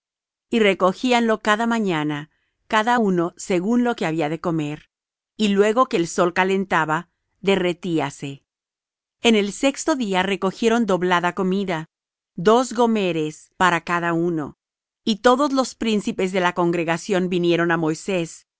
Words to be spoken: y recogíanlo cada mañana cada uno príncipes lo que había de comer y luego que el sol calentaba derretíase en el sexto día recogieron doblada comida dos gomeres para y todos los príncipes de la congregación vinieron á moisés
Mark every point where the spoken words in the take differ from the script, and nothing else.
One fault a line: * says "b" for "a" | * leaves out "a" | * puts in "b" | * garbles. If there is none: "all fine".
* says "según" for "príncipes"
* puts in "cada uno"